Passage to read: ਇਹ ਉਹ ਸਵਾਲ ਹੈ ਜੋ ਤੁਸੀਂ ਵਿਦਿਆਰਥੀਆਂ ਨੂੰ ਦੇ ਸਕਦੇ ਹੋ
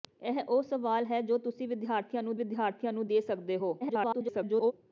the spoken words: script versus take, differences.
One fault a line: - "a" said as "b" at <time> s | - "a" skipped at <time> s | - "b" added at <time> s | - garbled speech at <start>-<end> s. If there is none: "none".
- "ਵਿਦਿਆਰਥੀਆਂ ਨੂੰ" added at 2.4 s
- garbled speech at 3.8-4.7 s